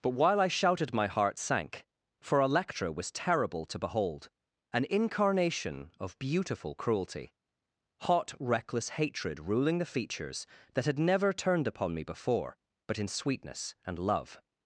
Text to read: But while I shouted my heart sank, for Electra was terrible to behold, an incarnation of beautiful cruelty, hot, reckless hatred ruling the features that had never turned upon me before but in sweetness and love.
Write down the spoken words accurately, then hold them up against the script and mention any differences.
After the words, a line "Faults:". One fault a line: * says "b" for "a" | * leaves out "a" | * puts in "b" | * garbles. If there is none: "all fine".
But while I shouted my heart sank, for Electra was terrible to behold, an incarnation of beautiful cruelty, hot, reckless hatred ruling the features that had never turned upon me before but in sweetness and love.
Faults:
all fine